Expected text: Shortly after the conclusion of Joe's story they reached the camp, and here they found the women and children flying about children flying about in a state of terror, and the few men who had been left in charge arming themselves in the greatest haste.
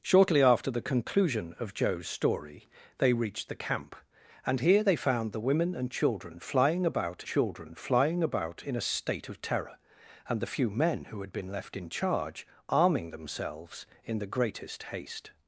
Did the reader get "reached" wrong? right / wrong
right